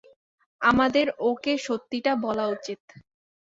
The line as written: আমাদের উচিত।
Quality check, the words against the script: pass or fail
fail